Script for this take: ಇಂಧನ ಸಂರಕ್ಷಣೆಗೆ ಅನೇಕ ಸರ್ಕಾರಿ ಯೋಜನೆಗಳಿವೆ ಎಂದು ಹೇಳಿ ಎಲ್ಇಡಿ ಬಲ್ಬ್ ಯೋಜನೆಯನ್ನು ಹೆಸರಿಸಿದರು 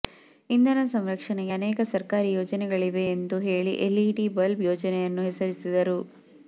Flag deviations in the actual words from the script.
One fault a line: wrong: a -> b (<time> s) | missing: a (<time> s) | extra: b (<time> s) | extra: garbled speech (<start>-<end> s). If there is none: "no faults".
no faults